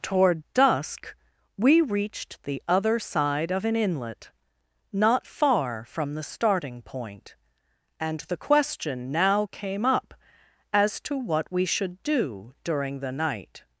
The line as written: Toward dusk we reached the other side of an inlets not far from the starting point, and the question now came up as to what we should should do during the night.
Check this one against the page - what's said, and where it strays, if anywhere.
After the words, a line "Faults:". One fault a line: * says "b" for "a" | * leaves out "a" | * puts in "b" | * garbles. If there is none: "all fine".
Toward dusk we reached the other side of an inlet not far from the starting point, and the question now came up as to what we should do during the night.
Faults:
* says "inlet" for "inlets"
* leaves out "should"